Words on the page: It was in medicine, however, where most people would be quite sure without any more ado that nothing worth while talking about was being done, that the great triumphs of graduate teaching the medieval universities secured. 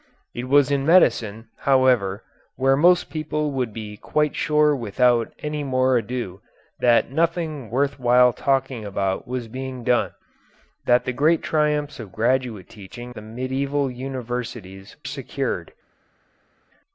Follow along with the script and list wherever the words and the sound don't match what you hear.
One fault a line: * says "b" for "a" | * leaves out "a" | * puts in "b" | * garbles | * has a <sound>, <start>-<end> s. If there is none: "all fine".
all fine